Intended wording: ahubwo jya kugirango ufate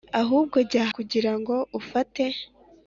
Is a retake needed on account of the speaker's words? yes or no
no